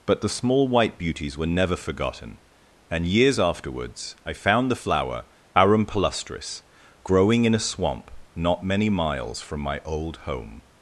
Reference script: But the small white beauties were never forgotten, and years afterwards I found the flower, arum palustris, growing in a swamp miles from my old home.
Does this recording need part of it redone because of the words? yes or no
yes